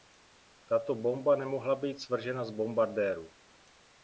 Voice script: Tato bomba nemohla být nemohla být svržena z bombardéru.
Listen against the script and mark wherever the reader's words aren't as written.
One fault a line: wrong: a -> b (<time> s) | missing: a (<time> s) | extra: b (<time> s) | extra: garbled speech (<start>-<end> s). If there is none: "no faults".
missing: nemohla být (2.0 s)